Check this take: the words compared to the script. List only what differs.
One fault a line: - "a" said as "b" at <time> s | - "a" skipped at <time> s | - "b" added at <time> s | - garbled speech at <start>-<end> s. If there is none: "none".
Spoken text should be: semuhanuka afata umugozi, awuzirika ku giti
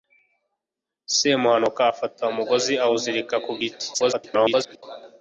- garbled speech at 3.9-4.8 s